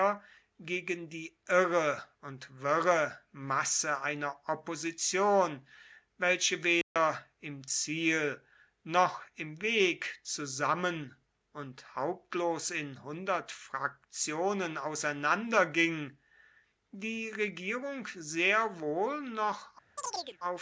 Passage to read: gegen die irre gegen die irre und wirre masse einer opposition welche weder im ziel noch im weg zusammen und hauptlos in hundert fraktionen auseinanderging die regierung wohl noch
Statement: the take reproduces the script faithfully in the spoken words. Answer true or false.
false